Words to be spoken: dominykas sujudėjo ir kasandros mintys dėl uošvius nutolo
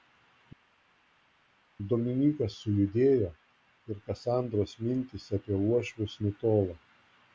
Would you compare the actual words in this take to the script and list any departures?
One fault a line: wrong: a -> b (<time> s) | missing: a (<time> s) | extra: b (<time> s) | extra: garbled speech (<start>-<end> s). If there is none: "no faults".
wrong: dėl -> apie (5.4 s)